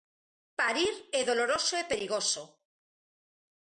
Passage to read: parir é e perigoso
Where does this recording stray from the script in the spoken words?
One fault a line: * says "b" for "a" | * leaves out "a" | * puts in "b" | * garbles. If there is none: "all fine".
* puts in "doloroso"